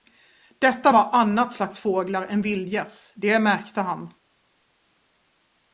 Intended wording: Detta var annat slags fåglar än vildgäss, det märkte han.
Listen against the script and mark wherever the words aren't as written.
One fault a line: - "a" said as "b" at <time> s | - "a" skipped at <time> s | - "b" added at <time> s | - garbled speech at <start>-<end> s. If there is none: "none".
none